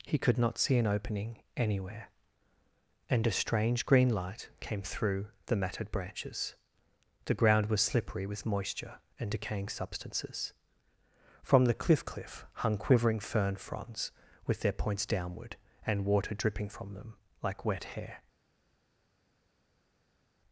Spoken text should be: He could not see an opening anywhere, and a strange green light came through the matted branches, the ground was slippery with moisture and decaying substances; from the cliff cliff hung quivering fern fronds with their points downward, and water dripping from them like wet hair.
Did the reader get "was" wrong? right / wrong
right